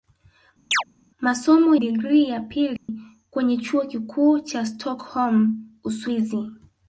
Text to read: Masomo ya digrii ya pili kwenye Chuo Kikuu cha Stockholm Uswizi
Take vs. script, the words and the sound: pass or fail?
fail